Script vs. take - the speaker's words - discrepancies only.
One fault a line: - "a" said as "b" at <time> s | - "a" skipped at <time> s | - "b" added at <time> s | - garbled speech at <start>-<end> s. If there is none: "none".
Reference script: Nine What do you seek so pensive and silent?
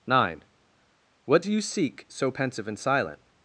none